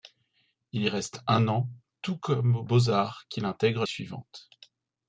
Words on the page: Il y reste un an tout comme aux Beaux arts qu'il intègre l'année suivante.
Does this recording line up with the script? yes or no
no